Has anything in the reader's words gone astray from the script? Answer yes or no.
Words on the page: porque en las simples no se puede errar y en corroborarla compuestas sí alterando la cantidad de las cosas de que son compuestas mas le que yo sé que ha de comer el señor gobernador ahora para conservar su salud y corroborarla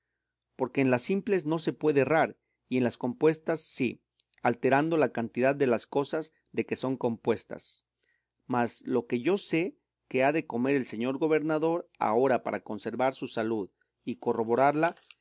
yes